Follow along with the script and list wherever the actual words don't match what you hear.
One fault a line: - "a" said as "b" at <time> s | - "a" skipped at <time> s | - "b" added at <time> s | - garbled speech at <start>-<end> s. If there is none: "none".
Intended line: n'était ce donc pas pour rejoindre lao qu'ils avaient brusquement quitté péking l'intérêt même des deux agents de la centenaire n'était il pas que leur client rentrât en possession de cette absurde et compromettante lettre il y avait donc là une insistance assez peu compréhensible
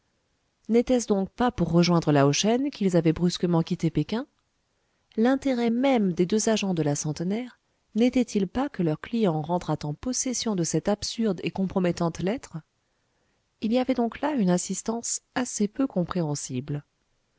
- "shen" added at 2.3 s